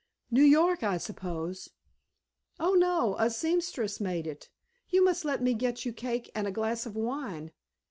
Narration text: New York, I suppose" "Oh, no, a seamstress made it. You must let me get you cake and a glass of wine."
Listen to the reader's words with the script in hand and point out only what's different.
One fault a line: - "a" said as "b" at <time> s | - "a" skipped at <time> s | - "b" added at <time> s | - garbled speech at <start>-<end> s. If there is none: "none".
none